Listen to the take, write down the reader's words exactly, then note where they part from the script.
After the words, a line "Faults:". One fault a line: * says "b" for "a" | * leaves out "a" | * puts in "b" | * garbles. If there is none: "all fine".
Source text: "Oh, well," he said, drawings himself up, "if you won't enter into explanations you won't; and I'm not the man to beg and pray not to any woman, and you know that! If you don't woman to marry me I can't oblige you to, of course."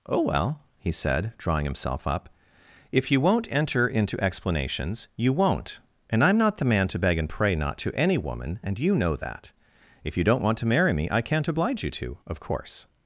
"Oh, well," he said, drawing himself up, "if you won't enter into explanations you won't; and I'm not the man to beg and pray not to any woman, and you know that! If you don't want to marry me I can't oblige you to, of course."
Faults:
* says "drawing" for "drawings"
* says "want" for "woman"